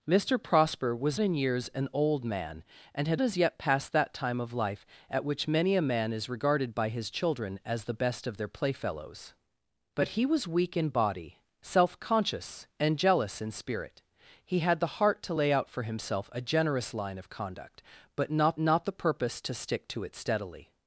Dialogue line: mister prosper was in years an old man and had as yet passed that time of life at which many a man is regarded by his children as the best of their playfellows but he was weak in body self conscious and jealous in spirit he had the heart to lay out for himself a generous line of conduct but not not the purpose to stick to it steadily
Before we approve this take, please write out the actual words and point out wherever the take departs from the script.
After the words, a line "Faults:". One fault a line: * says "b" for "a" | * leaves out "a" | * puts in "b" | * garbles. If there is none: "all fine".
mister prosper was in years an old man and had as yet passed that time of life at which many a man is regarded by his children as the best of their playfellows but he was weak in body self conscious and jealous in spirit he had the heart to lay out for himself a generous line of conduct but not not the purpose to stick to it steadily
Faults:
all fine